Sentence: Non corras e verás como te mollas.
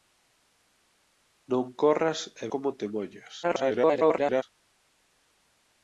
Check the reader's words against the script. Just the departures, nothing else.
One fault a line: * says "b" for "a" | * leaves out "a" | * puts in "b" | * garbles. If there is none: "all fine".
* leaves out "verás"
* garbles